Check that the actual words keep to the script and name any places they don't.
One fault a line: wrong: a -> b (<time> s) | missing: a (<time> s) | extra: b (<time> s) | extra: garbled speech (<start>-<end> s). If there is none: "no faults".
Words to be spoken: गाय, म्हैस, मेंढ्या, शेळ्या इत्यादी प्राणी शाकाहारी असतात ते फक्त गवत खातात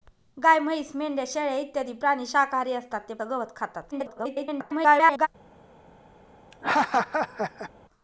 missing: फक्त (3.1 s)
extra: garbled speech (3.9-5.3 s)